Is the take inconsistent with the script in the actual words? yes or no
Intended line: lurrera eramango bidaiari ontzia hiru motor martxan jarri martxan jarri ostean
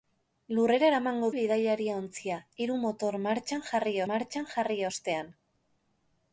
no